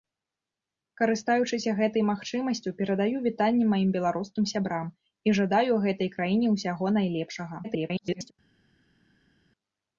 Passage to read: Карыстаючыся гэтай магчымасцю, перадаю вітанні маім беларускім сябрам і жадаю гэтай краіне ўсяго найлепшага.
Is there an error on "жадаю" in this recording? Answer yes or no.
no